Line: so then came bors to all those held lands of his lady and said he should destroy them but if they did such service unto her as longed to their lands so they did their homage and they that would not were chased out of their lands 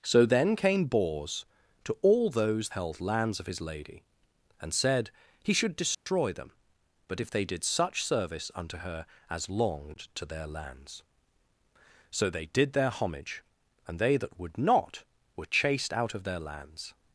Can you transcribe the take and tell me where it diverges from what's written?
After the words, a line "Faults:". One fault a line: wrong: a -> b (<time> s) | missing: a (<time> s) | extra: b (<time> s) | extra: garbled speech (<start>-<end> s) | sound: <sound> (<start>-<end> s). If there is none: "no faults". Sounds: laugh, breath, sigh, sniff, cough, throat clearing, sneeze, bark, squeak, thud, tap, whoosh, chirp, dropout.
so then came bors to all those held lands of his lady and said he should destroy them but if they did such service unto her as longed to their lands so they did their homage and they that would not were chased out of their lands
Faults:
sound: dropout (5.9-6.1 s)